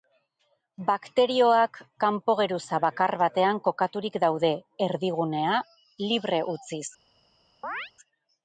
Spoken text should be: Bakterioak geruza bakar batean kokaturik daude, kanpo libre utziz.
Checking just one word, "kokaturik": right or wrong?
right